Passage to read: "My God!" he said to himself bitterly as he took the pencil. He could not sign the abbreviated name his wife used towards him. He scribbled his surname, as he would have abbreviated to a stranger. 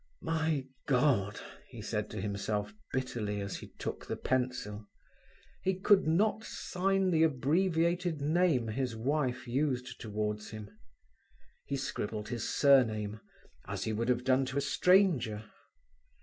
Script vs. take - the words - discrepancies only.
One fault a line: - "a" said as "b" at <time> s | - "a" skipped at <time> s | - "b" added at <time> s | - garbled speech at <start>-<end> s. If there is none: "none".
- "abbreviated" said as "done" at 14.2 s